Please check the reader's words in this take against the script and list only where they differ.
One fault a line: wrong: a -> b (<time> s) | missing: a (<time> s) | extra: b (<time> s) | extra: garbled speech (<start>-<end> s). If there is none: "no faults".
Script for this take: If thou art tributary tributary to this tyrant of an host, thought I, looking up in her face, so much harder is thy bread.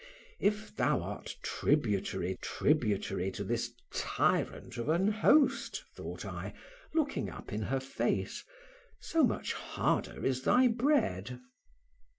no faults